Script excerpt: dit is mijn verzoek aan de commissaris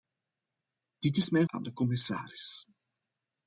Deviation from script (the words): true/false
true